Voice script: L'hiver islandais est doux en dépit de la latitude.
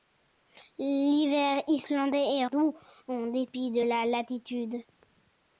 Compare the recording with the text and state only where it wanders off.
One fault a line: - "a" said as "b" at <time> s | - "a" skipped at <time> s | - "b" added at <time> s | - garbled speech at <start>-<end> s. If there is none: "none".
none